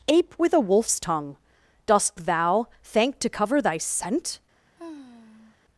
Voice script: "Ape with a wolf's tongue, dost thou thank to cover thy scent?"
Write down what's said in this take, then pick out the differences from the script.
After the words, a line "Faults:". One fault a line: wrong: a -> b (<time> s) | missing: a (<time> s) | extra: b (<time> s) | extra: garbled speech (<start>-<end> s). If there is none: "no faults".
"Ape with a wolf's tongue, dost thou thank to cover thy scent?"
Faults:
no faults